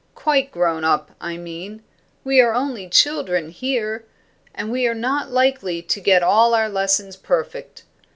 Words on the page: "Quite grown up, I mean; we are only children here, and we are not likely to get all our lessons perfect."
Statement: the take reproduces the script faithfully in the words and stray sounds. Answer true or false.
true